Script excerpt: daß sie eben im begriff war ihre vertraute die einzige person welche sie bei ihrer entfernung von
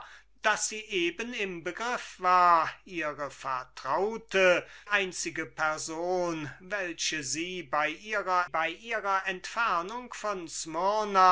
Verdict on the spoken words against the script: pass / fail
fail